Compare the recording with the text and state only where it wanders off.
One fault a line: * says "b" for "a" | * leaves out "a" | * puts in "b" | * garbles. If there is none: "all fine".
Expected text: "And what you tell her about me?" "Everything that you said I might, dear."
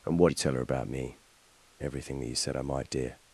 all fine